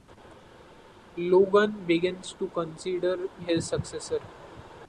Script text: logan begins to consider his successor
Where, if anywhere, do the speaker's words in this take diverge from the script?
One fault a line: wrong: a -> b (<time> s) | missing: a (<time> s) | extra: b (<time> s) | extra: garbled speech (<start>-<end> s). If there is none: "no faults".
no faults